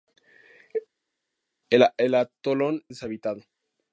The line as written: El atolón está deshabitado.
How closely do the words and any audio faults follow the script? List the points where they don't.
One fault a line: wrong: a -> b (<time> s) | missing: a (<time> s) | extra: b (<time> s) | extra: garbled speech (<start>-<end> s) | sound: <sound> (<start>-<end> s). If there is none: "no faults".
missing: está (2.8 s)